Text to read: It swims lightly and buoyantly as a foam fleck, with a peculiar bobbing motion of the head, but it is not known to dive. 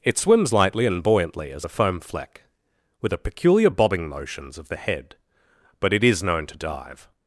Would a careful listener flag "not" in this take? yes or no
yes